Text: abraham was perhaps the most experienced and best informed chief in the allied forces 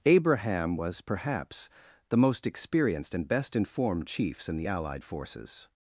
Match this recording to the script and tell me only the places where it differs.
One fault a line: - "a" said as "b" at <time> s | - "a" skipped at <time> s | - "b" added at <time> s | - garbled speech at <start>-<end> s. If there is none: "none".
- "chief" said as "chiefs" at 4.1 s